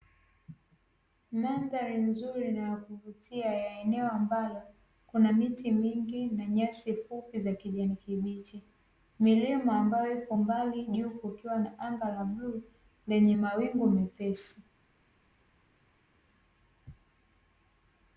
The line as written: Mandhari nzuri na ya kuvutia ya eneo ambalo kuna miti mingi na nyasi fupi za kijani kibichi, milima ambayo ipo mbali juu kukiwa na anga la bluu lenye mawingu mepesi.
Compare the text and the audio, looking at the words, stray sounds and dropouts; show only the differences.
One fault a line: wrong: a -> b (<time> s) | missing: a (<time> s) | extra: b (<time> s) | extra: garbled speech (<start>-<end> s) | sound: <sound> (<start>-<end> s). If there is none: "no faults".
no faults